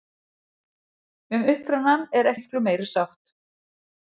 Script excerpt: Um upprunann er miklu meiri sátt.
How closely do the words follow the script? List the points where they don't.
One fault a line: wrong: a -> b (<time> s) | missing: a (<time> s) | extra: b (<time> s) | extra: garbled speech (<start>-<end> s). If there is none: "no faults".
no faults